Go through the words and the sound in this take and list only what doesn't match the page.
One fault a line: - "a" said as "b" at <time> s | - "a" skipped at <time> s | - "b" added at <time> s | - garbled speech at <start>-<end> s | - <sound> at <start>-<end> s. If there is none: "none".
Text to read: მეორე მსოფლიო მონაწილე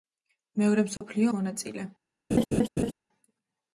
- dropout at 1.0-1.0 s
- laugh at 2.3-2.9 s